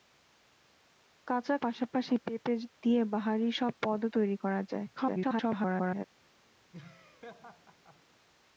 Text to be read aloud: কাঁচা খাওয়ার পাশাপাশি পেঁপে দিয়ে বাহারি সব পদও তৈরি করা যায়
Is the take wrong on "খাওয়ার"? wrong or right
wrong